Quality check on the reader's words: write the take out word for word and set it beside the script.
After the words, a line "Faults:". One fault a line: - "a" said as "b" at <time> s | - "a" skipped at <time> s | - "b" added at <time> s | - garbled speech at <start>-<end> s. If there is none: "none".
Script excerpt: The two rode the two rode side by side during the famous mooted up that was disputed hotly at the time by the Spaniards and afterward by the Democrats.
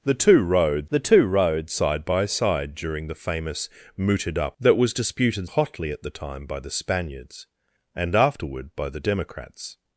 The two rode the two rode side by side during the famous mooted up that was disputed hotly at the time by the Spaniards and afterward by the Democrats.
Faults:
none